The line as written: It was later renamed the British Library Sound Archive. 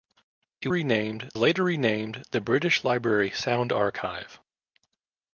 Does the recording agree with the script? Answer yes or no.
no